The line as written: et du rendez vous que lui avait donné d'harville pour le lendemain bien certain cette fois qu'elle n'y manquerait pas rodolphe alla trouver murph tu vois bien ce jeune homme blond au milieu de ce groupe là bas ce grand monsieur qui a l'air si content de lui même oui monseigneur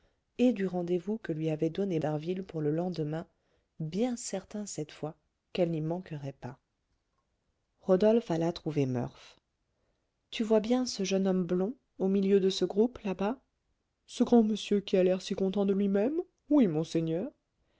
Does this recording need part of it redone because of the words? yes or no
no